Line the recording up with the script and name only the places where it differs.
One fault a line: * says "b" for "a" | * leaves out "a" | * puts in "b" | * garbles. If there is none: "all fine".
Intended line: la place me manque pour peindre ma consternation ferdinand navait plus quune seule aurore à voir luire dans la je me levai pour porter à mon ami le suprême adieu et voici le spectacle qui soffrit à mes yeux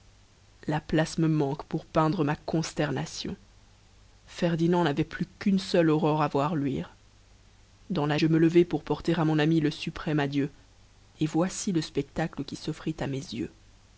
all fine